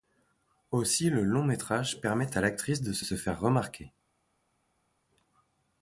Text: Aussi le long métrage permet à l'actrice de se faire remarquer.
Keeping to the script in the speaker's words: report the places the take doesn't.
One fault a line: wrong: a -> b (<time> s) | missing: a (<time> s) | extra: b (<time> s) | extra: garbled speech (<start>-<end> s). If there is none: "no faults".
extra: se (3.0 s)